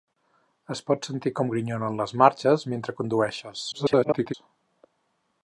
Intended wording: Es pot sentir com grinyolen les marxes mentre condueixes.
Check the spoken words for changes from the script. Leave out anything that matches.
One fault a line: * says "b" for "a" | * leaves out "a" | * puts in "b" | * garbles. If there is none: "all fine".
* garbles